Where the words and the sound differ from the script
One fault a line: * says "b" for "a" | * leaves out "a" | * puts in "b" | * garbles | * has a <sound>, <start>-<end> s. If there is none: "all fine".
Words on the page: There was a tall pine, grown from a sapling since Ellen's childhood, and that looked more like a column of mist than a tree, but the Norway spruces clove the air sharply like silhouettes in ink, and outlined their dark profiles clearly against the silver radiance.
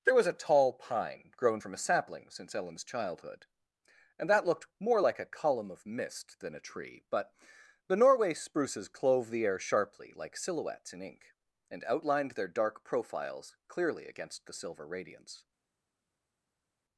all fine